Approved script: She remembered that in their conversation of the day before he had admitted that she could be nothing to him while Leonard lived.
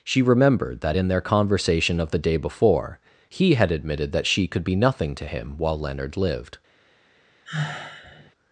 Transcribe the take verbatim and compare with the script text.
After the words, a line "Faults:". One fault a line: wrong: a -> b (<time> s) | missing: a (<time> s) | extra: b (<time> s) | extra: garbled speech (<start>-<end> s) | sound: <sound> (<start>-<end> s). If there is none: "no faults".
She remembered that in their conversation of the day before he had admitted that she could be nothing to him while Leonard lived.
Faults:
sound: sigh (7.5-8.3 s)